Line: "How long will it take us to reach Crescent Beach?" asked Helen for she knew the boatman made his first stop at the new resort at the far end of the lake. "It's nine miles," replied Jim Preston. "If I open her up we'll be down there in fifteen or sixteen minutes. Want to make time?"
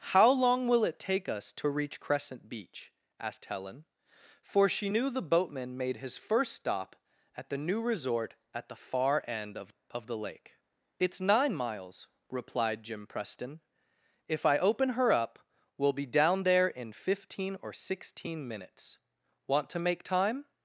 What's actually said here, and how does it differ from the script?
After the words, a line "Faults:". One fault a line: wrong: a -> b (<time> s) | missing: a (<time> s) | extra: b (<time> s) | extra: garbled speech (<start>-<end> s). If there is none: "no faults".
"How long will it take us to reach Crescent Beach?" asked Helen for she knew the boatman made his first stop at the new resort at the far end of of the lake. "It's nine miles," replied Jim Preston. "If I open her up we'll be down there in fifteen or sixteen minutes. Want to make time?"
Faults:
extra: of (9.9 s)